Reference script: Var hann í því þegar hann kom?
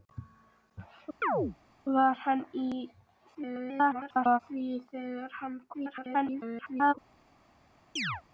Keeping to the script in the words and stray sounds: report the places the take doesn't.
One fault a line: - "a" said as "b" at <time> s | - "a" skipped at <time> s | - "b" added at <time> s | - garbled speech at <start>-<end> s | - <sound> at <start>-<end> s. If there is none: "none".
- chirp at 1.2-1.6 s
- garbled speech at 3.3-4.4 s
- garbled speech at 5.7-6.9 s
- chirp at 8.0-8.2 s